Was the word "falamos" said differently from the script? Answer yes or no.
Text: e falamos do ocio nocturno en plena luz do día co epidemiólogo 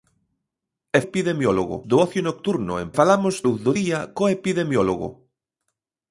yes